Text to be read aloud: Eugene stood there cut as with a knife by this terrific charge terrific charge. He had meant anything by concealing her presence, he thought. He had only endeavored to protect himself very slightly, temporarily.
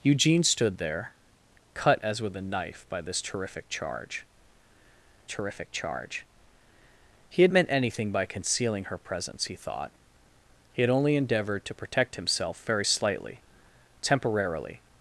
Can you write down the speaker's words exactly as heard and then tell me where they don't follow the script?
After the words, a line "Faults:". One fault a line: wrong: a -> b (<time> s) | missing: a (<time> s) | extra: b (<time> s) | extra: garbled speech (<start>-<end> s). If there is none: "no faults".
Eugene stood there cut as with a knife by this terrific charge terrific charge. He had meant anything by concealing her presence, he thought. He had only endeavored to protect himself very slightly, temporarily.
Faults:
no faults